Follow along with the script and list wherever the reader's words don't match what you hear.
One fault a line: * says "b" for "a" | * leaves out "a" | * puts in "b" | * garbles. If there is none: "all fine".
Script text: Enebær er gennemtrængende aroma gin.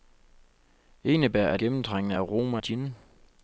all fine